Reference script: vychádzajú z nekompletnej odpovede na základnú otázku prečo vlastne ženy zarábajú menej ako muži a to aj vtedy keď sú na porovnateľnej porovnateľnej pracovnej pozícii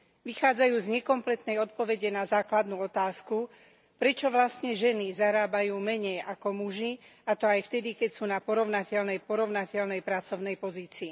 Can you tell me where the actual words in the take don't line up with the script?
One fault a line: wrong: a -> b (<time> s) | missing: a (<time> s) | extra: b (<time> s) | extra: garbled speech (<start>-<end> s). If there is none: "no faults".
no faults